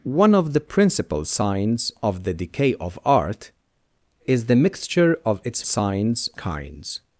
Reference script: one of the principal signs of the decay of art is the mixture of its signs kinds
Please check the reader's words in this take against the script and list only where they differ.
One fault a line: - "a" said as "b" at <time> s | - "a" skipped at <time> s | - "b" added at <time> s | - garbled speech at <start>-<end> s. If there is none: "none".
none